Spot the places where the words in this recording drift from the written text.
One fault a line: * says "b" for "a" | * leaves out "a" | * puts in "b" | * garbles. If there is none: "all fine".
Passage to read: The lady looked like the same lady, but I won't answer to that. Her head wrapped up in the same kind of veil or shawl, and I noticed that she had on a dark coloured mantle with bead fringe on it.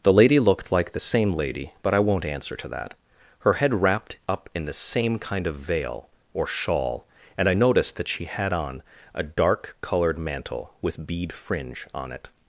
all fine